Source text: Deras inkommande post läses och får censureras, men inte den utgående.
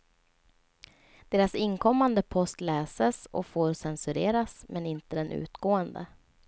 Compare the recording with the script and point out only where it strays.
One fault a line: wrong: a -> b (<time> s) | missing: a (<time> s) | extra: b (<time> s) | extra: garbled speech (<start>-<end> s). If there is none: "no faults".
no faults